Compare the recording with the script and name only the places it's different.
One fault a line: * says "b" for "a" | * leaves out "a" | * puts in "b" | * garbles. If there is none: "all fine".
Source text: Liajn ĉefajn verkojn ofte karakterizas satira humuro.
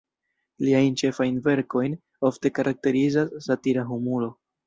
all fine